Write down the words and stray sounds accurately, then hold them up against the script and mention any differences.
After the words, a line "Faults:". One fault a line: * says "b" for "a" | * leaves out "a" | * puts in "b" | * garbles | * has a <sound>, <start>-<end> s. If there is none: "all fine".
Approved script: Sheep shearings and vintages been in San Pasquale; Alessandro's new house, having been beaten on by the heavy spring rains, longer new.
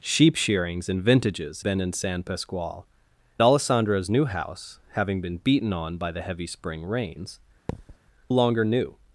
Sheep shearings and vintages been in San Pasquale; Alessandro's new house, having been beaten on by the heavy spring rains, longer new.
Faults:
* has a thud, 7.7-8.0 s